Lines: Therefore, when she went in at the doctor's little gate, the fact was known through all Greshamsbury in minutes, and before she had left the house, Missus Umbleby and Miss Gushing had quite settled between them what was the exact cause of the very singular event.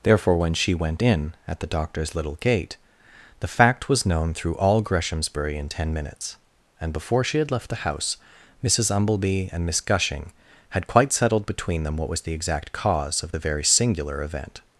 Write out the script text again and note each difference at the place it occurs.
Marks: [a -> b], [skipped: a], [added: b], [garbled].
Therefore, when she went in at the doctor's little gate, the fact was known through all Greshamsbury in [added: ten] minutes, and before she had left the house, Missus Umbleby and Miss Gushing had quite settled between them what was the exact cause of the very singular event.